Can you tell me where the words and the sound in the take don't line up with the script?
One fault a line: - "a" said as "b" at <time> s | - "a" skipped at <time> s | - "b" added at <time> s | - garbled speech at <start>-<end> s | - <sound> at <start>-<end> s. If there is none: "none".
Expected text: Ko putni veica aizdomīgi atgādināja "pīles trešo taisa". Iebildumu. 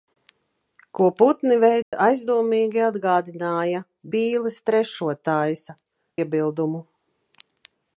- dropout at 1.8-1.9 s